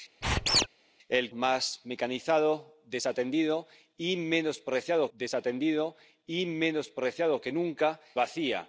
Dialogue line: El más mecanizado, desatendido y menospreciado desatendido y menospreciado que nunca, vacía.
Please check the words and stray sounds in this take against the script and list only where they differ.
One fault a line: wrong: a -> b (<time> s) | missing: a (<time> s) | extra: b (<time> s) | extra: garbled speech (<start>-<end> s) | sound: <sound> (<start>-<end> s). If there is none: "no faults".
sound: squeak (0.2-0.7 s)